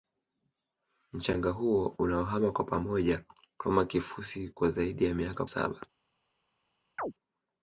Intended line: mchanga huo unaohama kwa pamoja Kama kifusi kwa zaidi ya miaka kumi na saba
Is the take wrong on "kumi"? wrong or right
wrong